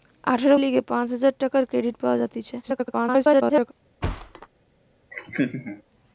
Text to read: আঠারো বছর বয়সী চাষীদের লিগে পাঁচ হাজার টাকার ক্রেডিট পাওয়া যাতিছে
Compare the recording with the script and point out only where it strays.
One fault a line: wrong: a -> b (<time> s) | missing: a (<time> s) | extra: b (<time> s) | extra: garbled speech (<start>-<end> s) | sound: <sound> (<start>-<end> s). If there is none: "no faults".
missing: বছর বয়সী চাষীদের (0.6 s)
extra: garbled speech (2.6-3.7 s)
sound: thud (4.0-4.5 s)
sound: laugh (5.1-5.8 s)